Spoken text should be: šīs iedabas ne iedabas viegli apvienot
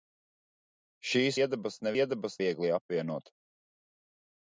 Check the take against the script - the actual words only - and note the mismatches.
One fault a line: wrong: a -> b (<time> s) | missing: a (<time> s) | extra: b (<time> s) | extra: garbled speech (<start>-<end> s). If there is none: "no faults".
no faults